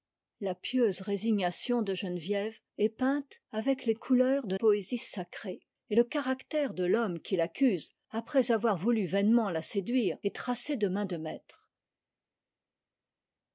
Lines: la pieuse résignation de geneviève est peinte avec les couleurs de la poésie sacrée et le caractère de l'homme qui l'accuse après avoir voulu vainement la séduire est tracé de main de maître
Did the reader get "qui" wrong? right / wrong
right